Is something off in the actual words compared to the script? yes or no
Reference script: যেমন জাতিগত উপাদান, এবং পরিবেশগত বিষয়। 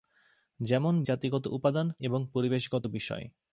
no